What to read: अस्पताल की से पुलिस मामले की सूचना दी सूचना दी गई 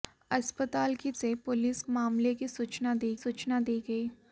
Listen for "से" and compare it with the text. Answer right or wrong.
right